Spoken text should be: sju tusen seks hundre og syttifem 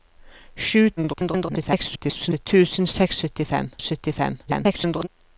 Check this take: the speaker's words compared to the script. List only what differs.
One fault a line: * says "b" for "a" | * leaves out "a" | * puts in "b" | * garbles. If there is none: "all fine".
* garbles
* says "syttifem" for "hundre"
* garbles